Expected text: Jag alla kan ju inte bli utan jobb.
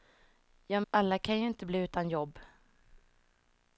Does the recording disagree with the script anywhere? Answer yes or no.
no